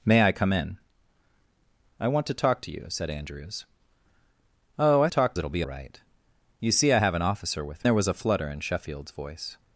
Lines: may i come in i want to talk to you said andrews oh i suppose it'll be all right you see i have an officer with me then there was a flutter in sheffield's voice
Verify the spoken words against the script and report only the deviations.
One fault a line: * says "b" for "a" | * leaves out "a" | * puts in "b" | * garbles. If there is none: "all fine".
* says "talk" for "suppose"
* leaves out "all"
* leaves out "me then"